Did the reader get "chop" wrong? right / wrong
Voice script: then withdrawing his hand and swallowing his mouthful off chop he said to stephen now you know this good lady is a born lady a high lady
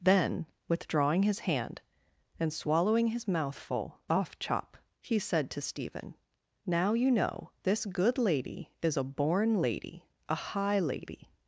right